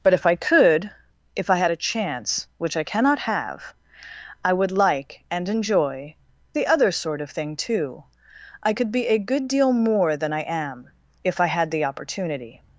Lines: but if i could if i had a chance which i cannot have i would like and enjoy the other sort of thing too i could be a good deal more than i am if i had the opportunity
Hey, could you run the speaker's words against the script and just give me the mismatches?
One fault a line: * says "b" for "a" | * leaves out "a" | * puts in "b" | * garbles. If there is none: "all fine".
all fine